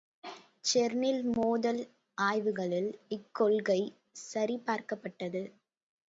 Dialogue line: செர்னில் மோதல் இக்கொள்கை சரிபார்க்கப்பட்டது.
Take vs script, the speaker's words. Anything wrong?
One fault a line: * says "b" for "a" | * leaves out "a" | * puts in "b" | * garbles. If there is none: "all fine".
* puts in "ஆய்வுகளில்"